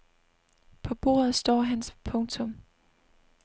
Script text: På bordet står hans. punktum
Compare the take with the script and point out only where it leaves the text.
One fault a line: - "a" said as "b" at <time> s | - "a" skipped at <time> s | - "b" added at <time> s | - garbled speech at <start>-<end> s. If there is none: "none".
none